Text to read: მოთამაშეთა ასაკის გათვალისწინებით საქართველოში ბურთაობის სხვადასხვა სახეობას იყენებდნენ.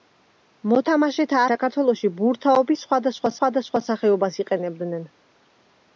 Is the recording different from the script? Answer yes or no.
yes